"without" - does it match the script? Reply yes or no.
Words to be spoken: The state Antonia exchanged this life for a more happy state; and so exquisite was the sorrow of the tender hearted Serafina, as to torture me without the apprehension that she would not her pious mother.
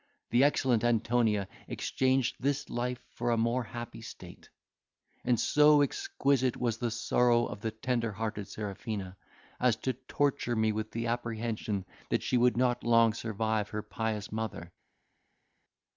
no